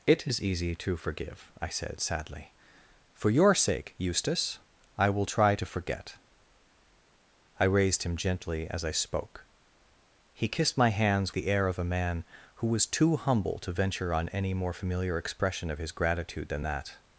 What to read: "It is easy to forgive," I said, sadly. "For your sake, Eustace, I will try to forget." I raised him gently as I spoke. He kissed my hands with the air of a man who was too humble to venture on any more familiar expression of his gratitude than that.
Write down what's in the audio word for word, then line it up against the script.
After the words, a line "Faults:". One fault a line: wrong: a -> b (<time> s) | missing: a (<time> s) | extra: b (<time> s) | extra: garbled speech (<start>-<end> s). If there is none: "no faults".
"It is easy to forgive," I said, sadly. "For your sake, Eustace, I will try to forget." I raised him gently as I spoke. He kissed my hands the air of a man who was too humble to venture on any more familiar expression of his gratitude than that.
Faults:
missing: with (11.3 s)